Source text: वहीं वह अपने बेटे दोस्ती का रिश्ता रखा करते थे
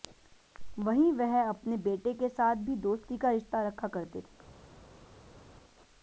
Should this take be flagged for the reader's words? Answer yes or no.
yes